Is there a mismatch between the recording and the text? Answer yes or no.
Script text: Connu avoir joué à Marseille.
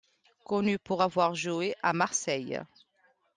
yes